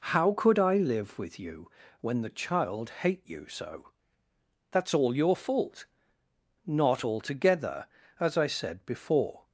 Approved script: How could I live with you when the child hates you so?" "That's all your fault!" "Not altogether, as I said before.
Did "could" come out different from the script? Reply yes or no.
no